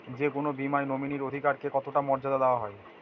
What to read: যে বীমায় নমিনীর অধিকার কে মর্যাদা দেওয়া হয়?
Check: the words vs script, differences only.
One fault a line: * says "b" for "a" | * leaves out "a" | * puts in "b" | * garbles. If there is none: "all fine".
* puts in "কোনো"
* puts in "কতটা"